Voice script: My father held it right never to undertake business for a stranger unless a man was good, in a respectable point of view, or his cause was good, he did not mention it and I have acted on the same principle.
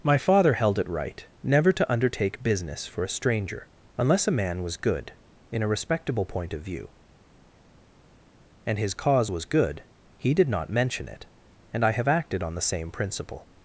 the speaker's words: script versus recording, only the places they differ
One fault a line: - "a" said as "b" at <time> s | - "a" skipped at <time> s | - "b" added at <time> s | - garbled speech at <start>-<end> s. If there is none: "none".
- "or" said as "and" at 8.7 s